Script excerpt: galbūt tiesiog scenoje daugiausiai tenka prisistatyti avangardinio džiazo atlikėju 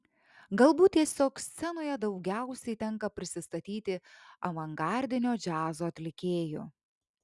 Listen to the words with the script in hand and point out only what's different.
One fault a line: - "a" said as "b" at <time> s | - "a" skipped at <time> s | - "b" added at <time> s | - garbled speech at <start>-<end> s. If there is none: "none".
none